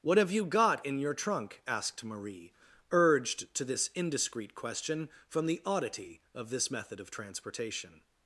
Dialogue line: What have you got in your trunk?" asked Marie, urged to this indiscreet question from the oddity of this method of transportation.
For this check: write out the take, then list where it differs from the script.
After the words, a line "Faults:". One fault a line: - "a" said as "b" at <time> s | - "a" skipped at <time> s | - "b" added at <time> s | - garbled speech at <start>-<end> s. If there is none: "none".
What have you got in your trunk?" asked Marie, urged to this indiscreet question from the oddity of this method of transportation.
Faults:
none